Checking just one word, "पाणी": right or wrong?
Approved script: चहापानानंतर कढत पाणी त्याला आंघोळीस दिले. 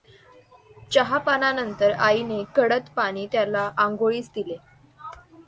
right